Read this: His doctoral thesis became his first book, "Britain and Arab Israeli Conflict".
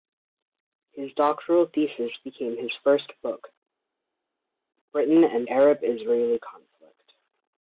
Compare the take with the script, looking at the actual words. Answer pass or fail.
pass